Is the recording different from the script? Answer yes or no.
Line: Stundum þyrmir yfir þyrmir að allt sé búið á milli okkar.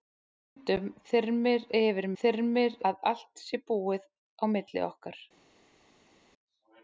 no